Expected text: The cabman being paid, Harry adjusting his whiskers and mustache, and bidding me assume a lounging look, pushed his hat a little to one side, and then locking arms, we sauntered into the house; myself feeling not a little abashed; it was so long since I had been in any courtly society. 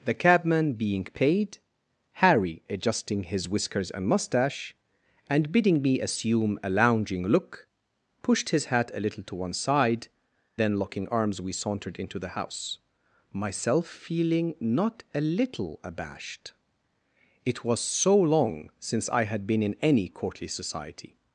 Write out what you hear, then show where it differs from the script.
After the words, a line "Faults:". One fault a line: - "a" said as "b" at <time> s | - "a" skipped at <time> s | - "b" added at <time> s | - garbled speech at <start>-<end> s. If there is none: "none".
The cabman being paid, Harry adjusting his whiskers and mustache, and bidding me assume a lounging look, pushed his hat a little to one side, then locking arms, we sauntered into the house; myself feeling not a little abashed; it was so long since I had been in any courtly society.
Faults:
- "and" skipped at 10.1 s